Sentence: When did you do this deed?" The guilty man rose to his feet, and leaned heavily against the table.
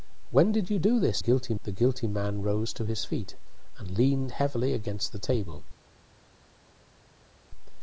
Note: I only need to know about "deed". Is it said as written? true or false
false